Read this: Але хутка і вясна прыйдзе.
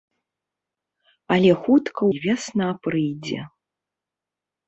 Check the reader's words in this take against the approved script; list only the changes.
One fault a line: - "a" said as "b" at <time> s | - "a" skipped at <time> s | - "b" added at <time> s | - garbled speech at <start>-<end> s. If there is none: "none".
none